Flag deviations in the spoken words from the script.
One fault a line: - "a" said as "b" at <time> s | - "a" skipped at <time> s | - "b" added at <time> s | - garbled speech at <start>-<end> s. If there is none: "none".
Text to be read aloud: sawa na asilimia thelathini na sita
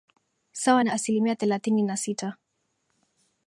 none